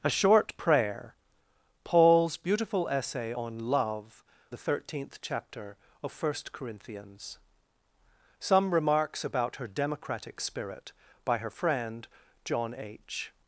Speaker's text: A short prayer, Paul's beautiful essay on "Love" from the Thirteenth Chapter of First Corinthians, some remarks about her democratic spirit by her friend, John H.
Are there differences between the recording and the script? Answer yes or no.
yes